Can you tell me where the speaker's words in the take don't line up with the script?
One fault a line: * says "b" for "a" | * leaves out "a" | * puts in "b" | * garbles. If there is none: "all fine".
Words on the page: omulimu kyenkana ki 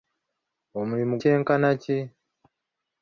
all fine